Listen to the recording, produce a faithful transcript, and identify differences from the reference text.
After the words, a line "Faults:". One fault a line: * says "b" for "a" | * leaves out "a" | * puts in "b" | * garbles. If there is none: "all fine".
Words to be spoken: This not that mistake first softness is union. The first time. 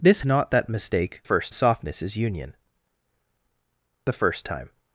This not that mistake first softness is union. The first time.
Faults:
all fine